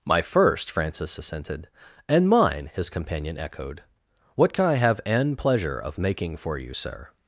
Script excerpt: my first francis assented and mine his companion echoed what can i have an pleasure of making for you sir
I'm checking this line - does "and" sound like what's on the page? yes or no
yes